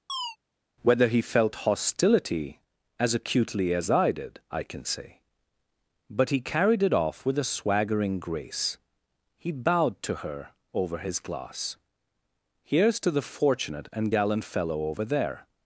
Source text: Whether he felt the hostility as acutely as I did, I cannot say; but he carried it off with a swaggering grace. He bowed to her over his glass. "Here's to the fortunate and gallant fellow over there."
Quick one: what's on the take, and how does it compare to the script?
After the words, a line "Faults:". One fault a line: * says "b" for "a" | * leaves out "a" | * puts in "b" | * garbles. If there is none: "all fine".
Whether he felt hostility as acutely as I did, I can say; but he carried it off with a swaggering grace. He bowed to her over his glass. "Here's to the fortunate and gallant fellow over there."
Faults:
* leaves out "the"
* says "can" for "cannot"